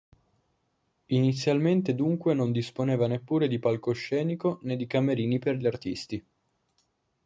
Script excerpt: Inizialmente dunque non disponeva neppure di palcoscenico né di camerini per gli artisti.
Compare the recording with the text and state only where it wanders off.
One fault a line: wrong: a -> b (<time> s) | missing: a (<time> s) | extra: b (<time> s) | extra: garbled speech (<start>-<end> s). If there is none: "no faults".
no faults